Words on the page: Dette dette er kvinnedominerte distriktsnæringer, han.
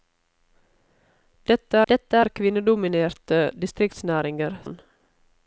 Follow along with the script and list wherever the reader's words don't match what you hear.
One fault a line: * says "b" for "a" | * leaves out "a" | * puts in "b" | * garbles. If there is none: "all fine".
all fine